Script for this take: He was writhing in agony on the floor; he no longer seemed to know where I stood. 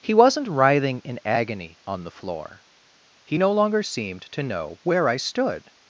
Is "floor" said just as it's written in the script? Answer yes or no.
yes